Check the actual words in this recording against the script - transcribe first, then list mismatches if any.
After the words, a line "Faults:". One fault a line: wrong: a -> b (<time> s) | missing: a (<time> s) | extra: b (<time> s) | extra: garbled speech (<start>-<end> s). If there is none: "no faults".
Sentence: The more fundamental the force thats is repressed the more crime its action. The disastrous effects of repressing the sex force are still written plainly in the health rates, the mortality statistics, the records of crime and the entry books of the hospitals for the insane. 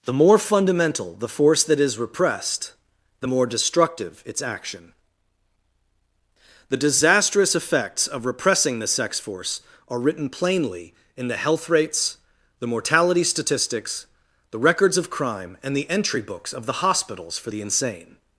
The more fundamental the force that is repressed the more destructive its action. The disastrous effects of repressing the sex force are written plainly in the health rates, the mortality statistics, the records of crime and the entry books of the hospitals for the insane.
Faults:
wrong: thats -> that (1.6 s)
wrong: crime -> destructive (3.4 s)
missing: still (10.0 s)